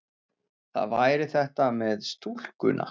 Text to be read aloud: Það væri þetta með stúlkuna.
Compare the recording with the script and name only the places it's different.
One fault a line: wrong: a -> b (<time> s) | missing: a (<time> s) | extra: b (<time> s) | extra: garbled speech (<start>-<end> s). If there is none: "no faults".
no faults